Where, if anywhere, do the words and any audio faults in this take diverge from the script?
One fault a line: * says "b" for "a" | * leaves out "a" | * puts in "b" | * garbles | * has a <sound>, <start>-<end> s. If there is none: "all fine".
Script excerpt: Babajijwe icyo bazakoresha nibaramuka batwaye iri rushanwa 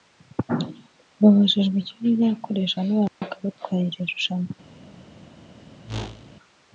* has a dropout, 3.1-3.2 s
* has a whoosh, 5.9-6.4 s